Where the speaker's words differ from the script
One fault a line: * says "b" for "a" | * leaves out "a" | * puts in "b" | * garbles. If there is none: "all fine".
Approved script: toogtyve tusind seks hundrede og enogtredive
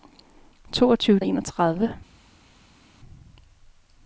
* leaves out "tusind seks hundrede"